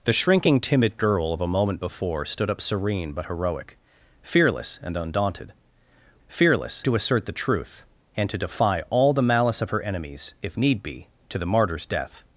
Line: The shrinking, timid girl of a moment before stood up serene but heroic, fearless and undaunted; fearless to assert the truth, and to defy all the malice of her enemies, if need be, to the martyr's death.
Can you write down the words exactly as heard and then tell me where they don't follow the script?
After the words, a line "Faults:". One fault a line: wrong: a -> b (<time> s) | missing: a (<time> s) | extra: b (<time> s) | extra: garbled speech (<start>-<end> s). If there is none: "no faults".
The shrinking, timid girl of a moment before stood up serene but heroic, fearless and undaunted; fearless to assert the truth, and to defy all the malice of her enemies, if need be, to the martyr's death.
Faults:
no faults